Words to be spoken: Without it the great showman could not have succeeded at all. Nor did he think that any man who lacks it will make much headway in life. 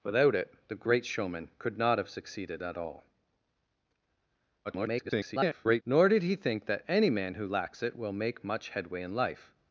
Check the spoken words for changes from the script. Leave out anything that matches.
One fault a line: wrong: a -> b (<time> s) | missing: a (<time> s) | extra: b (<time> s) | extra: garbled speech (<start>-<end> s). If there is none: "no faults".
extra: garbled speech (4.6-5.8 s)